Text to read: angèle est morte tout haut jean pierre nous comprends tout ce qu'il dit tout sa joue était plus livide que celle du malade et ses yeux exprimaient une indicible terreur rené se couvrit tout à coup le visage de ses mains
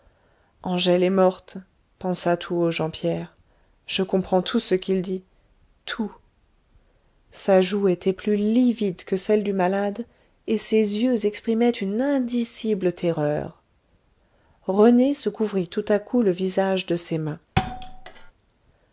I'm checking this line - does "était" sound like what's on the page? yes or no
yes